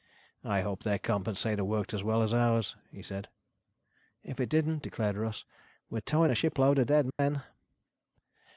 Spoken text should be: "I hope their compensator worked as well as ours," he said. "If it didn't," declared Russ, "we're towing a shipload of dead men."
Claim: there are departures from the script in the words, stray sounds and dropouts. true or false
true